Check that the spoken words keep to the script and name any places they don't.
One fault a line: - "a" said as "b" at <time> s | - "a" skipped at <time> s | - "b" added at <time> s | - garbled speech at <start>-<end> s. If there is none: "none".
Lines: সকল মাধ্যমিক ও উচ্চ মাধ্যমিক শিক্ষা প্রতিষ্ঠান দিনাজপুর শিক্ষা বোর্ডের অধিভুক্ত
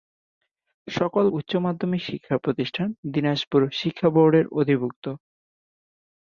- "মাধ্যমিক ও" skipped at 1.2 s